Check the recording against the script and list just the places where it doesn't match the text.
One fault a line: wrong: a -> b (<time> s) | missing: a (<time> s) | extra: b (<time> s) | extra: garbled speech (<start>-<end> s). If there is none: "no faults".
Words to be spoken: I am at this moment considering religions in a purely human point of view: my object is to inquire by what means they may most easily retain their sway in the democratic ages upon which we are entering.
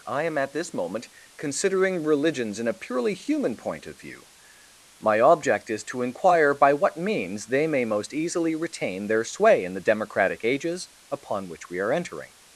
no faults